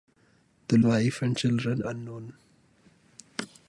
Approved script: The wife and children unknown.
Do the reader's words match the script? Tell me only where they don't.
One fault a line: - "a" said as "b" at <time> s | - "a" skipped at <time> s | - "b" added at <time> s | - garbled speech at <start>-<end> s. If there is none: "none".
none